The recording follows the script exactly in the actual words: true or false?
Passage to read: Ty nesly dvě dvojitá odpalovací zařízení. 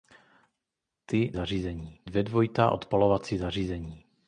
false